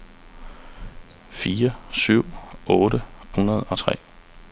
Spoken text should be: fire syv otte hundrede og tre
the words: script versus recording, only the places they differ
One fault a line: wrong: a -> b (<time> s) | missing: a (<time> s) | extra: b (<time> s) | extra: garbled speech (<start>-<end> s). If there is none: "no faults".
no faults